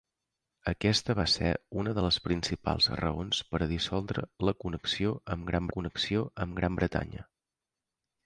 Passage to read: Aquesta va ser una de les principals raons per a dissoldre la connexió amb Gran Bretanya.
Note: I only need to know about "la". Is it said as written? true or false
true